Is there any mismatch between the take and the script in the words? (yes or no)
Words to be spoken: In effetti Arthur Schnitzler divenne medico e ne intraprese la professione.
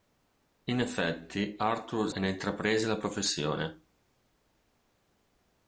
yes